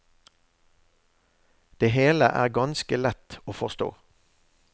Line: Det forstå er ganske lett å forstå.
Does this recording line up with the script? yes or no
no